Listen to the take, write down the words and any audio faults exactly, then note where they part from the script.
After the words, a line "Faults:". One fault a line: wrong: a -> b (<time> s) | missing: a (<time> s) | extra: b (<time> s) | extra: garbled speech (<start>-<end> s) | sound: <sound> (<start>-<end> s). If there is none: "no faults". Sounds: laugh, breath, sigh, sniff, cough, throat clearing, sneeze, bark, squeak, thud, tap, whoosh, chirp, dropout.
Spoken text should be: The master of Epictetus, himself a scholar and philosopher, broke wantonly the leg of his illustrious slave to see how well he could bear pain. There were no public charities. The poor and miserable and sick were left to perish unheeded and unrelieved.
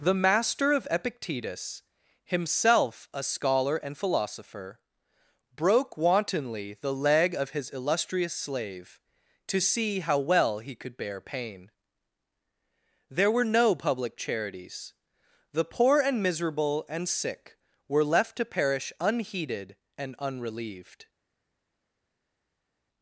The master of Epictetus, himself a scholar and philosopher, broke wantonly the leg of his illustrious slave to see how well he could bear pain. There were no public charities. The poor and miserable and sick were left to perish unheeded and unrelieved.
Faults:
no faults